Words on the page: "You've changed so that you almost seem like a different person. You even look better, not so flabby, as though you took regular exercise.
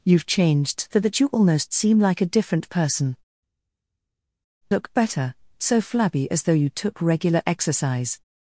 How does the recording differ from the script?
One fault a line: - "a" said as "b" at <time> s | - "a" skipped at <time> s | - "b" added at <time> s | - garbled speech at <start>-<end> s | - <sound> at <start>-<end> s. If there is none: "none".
- "You even" skipped at 3.2 s
- "not" skipped at 5.3 s